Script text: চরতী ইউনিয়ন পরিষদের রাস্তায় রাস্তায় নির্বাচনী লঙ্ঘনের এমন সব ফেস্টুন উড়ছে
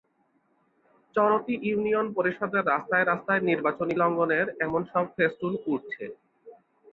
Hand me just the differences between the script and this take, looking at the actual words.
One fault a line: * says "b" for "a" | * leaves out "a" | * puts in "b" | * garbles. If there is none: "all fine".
all fine